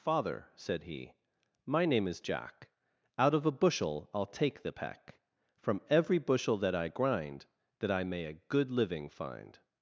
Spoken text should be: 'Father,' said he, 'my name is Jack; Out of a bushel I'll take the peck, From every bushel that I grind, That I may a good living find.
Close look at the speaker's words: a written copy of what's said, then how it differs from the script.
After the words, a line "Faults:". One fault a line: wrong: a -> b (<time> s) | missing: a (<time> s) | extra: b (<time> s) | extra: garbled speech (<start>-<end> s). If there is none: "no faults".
'Father,' said he, 'my name is Jack; Out of a bushel I'll take the peck, From every bushel that I grind, That I may a good living find.
Faults:
no faults